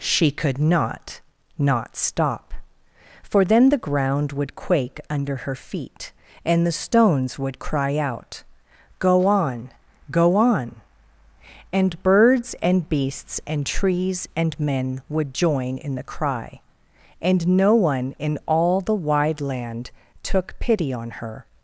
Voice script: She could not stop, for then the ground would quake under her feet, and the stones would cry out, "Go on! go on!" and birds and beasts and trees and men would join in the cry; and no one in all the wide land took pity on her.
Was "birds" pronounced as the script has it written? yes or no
yes